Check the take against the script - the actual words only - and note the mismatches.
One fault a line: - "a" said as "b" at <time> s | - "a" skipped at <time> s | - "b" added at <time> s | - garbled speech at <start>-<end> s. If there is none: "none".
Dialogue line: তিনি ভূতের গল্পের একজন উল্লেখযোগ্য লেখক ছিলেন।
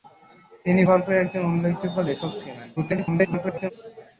- "ভূতের" skipped at 0.8 s
- garbled speech at 2.8-3.7 s